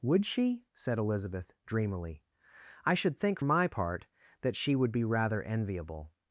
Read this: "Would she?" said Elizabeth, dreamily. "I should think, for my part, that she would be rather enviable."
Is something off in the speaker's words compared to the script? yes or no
yes